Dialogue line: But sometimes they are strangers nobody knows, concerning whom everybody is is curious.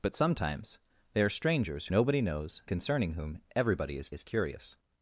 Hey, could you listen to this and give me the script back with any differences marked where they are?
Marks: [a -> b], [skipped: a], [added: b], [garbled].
But sometimes they are strangers nobody knows, concerning whom everybody is is curious.